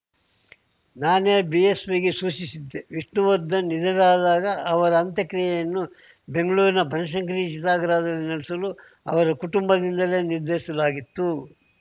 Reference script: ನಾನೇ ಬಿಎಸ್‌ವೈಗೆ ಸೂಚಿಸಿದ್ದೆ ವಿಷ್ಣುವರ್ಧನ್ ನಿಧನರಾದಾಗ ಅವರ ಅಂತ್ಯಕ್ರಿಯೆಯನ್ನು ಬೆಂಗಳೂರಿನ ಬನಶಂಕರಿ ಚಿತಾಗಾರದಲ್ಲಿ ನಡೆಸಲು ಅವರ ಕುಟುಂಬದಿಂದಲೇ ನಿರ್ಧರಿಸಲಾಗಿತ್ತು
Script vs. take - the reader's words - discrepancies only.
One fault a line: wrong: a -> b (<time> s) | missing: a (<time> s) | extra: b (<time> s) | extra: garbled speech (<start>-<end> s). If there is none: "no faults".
no faults